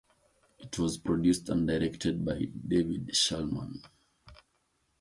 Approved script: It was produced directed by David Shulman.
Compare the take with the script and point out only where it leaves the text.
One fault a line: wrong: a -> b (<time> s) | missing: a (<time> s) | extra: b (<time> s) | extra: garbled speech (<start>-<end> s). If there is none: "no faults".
extra: and (1.5 s)